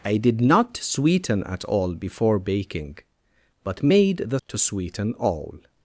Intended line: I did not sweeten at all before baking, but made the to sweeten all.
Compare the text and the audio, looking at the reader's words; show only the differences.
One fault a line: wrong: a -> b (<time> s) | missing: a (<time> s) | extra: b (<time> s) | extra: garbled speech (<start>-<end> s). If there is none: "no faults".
no faults